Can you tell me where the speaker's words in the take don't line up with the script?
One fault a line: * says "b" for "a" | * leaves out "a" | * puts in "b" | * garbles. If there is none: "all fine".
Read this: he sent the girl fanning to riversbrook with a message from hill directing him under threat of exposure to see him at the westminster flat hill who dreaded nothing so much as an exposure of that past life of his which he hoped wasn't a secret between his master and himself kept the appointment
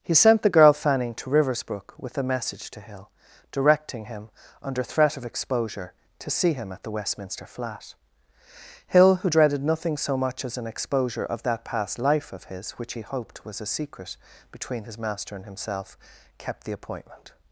* says "to" for "from"
* says "was" for "wasn't"